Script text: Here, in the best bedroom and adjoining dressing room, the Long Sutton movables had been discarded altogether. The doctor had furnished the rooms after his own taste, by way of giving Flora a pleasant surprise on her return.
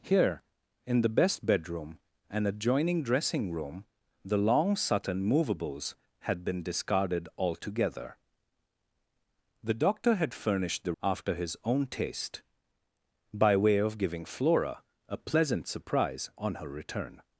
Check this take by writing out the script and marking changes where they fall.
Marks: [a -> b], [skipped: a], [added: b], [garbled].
Here, in the best bedroom and adjoining dressing room, the Long Sutton movables had been discarded altogether. The doctor had furnished the [skipped: rooms] after his own taste, by way of giving Flora a pleasant surprise on her return.